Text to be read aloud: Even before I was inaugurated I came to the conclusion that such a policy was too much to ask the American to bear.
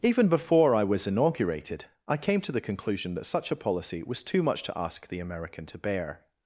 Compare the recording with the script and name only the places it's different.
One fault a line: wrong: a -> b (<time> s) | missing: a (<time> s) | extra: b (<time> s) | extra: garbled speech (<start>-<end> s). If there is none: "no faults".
no faults